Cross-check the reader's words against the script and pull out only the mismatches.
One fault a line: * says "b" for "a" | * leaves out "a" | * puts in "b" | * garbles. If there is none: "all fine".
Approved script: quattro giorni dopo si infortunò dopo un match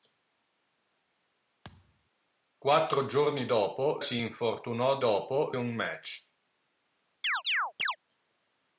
all fine